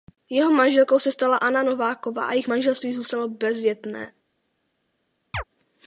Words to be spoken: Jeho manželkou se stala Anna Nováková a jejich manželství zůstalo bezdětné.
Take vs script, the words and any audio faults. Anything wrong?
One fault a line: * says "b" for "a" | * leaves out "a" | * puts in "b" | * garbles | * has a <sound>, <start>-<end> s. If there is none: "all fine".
* has a chirp, 5.3-5.4 s